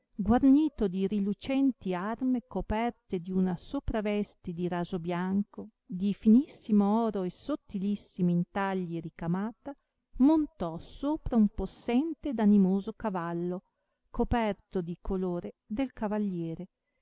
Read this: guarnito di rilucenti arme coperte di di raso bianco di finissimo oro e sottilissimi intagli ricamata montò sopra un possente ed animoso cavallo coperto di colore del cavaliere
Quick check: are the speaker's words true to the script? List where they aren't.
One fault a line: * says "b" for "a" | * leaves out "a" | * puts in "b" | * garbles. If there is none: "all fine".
* puts in "una sopraveste"